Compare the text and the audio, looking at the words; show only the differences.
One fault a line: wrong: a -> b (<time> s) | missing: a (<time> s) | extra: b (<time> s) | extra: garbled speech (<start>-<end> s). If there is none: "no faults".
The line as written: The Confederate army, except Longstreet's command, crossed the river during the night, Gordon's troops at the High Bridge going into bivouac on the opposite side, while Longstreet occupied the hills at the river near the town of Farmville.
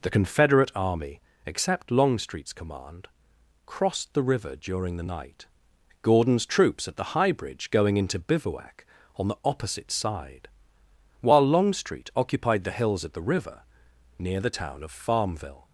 no faults